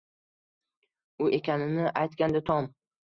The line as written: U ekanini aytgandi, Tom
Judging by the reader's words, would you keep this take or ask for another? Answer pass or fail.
pass